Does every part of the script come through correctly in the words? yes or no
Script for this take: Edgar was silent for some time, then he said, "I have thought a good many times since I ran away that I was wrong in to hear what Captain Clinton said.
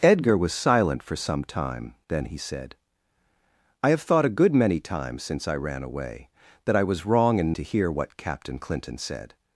yes